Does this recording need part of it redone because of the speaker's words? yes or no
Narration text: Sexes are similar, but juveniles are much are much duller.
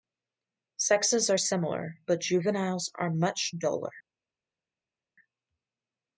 yes